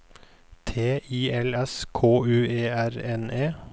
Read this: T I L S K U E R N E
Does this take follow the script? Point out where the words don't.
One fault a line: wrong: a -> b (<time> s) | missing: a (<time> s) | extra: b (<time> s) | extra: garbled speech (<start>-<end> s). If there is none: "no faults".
no faults